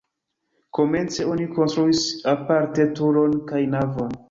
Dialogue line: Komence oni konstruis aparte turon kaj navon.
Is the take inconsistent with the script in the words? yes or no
no